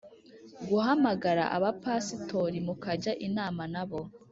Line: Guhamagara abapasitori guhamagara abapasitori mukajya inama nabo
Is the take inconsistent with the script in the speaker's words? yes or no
yes